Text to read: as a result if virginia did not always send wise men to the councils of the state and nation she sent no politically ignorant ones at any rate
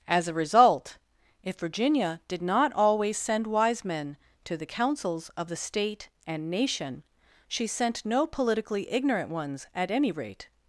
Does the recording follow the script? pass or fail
pass